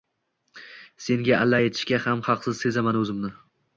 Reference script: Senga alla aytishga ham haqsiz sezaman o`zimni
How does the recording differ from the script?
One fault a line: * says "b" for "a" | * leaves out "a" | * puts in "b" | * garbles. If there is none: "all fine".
all fine